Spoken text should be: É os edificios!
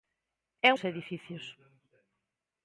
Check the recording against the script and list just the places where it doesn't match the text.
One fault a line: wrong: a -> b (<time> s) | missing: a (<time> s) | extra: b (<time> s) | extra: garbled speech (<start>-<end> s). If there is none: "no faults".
no faults